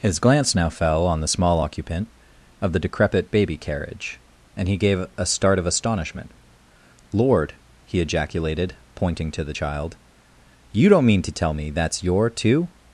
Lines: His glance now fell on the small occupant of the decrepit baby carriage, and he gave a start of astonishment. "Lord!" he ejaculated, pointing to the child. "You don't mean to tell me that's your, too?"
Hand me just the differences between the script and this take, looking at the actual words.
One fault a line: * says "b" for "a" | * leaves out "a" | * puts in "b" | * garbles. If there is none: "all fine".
all fine